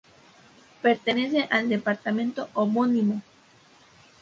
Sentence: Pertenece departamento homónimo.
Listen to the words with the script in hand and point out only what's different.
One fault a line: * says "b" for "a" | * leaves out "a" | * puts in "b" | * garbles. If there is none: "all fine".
* puts in "al"